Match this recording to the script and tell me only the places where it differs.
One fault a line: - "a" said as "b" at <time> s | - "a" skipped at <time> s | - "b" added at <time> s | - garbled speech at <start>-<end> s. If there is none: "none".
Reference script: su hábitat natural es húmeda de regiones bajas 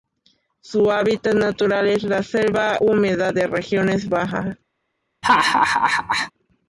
- "la selva" added at 2.0 s